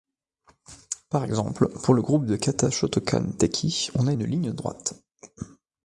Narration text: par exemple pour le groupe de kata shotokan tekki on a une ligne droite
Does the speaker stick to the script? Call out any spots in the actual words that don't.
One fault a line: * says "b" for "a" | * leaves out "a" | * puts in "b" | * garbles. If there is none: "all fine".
all fine